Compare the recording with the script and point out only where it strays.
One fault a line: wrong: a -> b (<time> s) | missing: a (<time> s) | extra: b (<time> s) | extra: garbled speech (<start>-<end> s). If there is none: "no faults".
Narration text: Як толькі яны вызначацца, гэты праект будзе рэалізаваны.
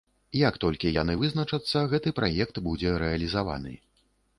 no faults